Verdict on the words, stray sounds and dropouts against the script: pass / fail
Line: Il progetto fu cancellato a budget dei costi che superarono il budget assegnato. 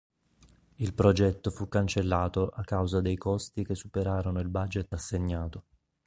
fail